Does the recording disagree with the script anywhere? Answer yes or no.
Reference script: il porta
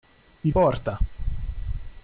no